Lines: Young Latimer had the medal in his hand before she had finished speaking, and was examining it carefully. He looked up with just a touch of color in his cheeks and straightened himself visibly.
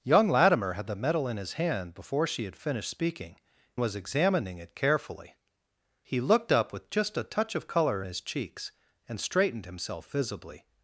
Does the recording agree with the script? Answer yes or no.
no